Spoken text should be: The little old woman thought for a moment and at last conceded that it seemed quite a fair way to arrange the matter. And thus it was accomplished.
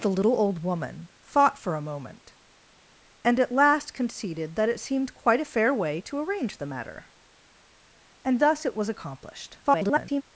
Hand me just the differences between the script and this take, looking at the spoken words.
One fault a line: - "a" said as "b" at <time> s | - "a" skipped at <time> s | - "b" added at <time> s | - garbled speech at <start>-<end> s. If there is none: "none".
- garbled speech at 9.6-10.2 s